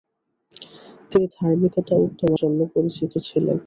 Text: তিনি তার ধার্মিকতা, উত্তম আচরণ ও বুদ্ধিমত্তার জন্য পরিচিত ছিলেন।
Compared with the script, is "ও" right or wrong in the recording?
wrong